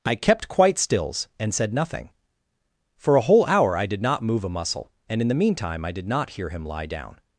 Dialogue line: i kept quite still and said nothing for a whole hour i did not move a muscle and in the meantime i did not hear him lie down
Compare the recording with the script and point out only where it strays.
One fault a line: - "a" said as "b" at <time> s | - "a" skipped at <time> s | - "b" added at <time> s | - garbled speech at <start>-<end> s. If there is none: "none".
- "still" said as "stills" at 0.8 s